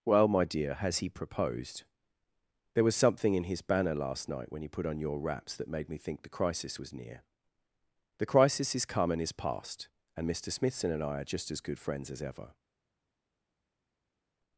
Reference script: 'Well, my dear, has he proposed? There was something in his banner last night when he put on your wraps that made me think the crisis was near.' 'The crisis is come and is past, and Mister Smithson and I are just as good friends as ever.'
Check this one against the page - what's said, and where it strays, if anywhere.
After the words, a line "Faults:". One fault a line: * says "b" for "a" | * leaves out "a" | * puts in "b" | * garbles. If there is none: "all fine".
'Well, my dear, has he proposed? There was something in his banner last night when he put on your wraps that made me think the crisis was near.' 'The crisis is come and is past, and Mister Smithson and I are just as good friends as ever.'
Faults:
all fine